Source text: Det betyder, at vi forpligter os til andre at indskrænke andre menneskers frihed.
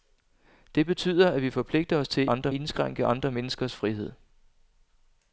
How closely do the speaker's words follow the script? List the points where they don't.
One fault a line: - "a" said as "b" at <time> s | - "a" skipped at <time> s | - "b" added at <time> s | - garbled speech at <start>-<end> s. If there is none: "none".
none